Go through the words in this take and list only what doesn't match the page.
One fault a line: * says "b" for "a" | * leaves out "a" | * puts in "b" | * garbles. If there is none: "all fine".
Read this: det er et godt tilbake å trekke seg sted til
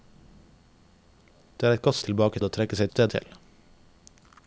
all fine